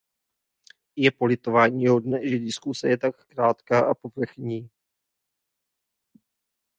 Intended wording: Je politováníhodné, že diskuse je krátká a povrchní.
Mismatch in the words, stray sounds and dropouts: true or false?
true